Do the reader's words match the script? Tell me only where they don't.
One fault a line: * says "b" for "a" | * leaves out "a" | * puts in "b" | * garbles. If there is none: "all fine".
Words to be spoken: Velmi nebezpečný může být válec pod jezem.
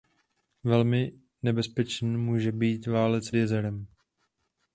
* leaves out "pod"